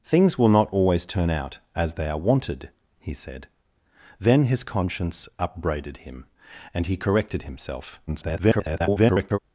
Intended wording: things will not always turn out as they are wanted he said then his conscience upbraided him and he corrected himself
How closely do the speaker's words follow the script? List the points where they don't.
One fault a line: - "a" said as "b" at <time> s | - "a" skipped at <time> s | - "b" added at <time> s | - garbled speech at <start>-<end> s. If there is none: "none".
- garbled speech at 8.1-9.4 s